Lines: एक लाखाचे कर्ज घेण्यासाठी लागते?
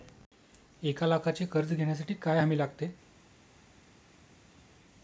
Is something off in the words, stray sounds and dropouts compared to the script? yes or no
yes